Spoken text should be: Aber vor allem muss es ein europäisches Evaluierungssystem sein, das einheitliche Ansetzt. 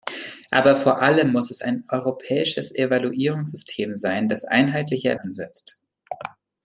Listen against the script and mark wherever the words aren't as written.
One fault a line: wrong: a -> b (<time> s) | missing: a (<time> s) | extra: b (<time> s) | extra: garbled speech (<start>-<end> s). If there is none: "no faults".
no faults